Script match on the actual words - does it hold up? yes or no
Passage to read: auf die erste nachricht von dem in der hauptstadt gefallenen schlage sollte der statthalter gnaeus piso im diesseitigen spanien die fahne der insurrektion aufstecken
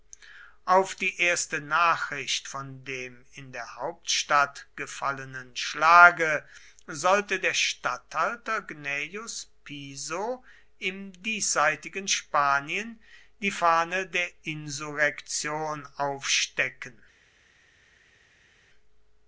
yes